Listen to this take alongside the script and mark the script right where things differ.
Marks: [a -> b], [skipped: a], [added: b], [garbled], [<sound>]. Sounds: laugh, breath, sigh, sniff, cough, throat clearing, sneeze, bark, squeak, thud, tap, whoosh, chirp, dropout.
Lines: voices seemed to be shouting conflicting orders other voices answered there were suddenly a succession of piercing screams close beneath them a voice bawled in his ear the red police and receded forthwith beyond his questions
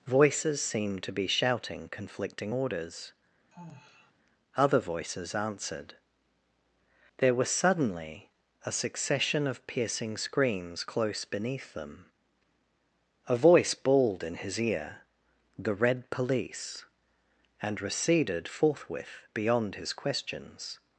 voices seemed to be shouting conflicting orders [sigh] other voices answered there [were -> was] suddenly a succession of piercing screams close beneath them a voice bawled in his ear the red police and receded forthwith beyond his questions